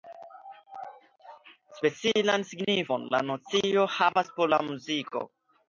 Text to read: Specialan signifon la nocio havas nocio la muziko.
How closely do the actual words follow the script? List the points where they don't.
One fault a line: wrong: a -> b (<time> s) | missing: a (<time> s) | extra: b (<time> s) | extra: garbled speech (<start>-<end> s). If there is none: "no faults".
wrong: nocio -> por (4.4 s)